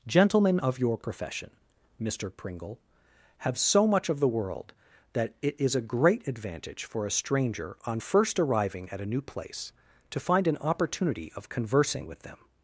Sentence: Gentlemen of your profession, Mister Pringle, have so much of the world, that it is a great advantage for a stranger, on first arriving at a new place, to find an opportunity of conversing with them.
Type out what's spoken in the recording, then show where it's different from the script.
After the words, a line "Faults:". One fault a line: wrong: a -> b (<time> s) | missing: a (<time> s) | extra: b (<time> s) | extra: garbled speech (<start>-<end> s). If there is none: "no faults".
Gentlemen of your profession, Mister Pringle, have so much of the world, that it is a great advantage for a stranger, on first arriving at a new place, to find an opportunity of conversing with them.
Faults:
no faults